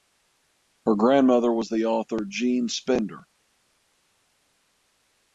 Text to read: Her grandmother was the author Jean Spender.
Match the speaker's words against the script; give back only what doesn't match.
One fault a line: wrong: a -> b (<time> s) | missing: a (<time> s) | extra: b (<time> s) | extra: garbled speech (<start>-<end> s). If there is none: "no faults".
no faults